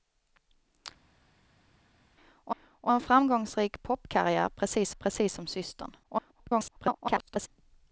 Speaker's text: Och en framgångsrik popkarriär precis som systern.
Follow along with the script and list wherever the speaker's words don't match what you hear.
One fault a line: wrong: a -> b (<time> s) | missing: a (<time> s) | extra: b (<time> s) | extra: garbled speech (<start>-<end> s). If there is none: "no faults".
extra: och (2.6 s)
extra: precis (4.9 s)
extra: garbled speech (6.0-7.5 s)